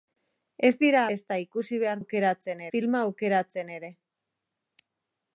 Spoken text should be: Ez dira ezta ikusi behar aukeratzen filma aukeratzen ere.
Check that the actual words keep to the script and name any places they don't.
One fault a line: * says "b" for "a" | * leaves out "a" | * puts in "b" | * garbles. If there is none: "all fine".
all fine